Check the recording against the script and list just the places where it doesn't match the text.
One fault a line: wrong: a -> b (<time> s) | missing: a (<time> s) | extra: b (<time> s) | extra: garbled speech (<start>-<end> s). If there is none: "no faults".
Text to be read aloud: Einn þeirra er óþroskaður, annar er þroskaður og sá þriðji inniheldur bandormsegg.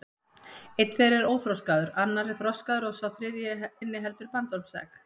no faults